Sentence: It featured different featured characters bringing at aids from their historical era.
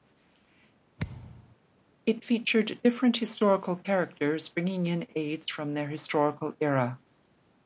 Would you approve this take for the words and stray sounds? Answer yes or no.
no